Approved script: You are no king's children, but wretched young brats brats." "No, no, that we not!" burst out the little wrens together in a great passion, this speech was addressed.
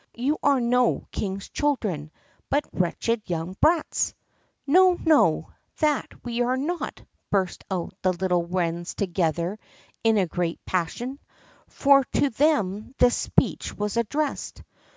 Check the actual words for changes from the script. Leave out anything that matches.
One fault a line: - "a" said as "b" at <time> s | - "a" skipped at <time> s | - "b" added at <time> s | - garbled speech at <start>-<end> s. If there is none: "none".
- "brats" skipped at 4.1 s
- "are" added at 6.4 s
- "for to them" added at 11.7 s